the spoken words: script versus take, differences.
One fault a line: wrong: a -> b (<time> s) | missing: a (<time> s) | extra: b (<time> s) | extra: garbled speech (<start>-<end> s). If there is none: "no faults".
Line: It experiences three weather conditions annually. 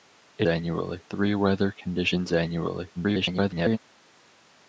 wrong: experiences -> annually (0.4 s)
extra: garbled speech (3.0-3.8 s)